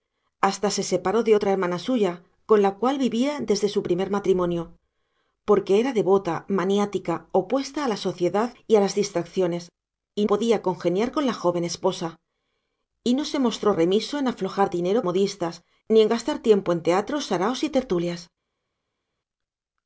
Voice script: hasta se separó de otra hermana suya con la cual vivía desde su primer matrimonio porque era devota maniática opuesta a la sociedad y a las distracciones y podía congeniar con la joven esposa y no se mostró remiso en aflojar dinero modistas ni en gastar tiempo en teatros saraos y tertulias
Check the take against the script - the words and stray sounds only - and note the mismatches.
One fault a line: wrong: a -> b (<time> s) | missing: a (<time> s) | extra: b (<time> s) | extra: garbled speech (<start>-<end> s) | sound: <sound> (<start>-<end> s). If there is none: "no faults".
no faults